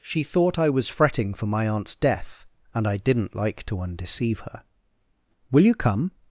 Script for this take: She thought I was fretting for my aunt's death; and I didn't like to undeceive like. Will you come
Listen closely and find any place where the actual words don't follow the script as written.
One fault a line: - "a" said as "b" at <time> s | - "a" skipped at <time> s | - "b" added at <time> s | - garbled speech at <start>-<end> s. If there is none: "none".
- "like" said as "her" at 4.4 s